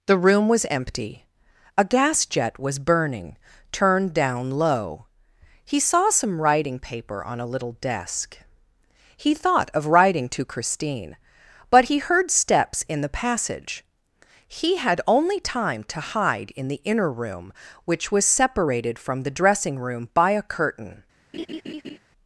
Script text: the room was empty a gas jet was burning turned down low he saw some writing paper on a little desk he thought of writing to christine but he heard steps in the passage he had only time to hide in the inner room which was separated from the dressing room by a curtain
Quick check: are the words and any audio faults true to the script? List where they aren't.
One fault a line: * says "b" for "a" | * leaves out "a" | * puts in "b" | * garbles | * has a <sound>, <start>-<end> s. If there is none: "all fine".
* has a laugh, 21.3-22.0 s